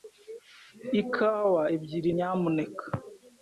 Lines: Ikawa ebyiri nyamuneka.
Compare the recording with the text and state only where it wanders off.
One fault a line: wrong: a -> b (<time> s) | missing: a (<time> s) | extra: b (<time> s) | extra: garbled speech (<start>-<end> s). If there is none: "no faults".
no faults